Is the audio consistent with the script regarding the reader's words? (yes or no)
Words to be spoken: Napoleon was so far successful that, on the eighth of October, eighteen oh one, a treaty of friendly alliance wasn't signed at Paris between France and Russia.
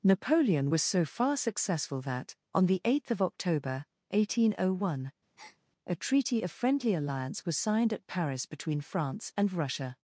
no